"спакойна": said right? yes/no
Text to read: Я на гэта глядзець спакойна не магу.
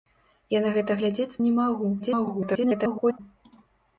no